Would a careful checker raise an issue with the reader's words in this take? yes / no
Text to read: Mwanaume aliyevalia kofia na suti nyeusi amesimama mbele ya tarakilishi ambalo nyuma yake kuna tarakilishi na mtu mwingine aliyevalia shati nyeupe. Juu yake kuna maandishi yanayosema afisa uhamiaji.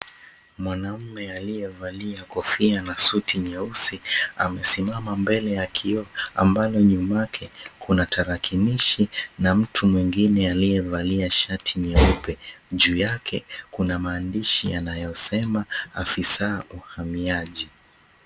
yes